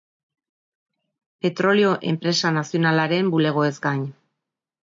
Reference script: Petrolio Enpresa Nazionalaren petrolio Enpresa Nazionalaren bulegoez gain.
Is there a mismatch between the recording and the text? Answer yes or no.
yes